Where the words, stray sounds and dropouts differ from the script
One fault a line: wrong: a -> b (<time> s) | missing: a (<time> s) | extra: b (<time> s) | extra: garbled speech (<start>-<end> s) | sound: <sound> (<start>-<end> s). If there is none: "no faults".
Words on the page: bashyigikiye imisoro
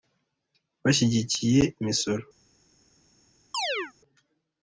sound: chirp (3.5-3.9 s)